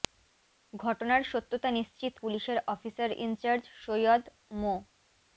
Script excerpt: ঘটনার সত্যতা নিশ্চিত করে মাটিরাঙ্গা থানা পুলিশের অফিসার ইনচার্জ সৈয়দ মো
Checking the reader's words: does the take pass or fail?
fail